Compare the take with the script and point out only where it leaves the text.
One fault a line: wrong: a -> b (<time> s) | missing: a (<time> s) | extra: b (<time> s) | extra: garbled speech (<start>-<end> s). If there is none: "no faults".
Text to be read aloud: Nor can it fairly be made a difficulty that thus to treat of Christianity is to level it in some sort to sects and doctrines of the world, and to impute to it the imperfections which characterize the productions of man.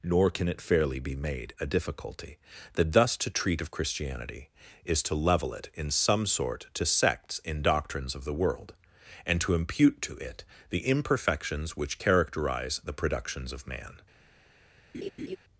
wrong: and -> in (7.4 s)